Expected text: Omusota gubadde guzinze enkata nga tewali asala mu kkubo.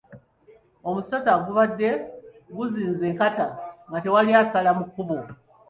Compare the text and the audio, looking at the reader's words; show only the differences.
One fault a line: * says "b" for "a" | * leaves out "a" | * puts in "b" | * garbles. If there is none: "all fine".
all fine